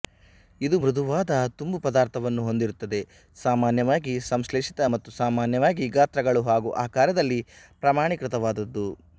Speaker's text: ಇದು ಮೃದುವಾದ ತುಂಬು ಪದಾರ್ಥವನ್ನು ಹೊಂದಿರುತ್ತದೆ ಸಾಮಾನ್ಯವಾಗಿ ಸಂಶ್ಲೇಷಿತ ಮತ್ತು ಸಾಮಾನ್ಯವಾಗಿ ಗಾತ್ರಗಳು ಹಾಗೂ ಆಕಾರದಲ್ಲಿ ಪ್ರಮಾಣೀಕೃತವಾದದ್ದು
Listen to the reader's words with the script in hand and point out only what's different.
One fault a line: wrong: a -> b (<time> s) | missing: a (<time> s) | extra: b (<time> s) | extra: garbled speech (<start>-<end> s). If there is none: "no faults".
no faults